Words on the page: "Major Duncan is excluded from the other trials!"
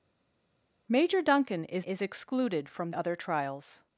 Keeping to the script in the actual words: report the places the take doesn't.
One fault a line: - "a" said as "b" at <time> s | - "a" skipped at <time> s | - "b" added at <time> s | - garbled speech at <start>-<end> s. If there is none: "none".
- "is" added at 1.8 s
- "the" skipped at 2.9 s